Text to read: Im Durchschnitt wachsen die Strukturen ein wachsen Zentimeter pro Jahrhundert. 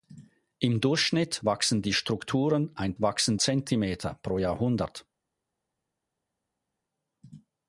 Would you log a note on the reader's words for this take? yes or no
no